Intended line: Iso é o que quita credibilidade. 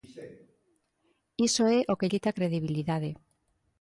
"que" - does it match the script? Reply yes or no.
yes